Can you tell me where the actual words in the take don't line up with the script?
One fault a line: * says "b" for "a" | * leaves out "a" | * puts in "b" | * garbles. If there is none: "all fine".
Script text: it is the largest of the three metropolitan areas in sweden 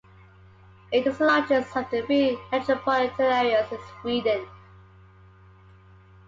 all fine